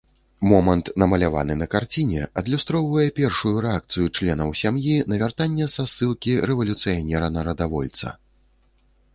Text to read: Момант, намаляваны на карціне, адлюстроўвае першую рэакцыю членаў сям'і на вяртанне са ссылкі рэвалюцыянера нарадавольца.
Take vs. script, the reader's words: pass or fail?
pass